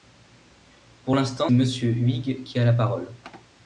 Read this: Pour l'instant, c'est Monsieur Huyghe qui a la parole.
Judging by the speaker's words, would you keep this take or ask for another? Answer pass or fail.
fail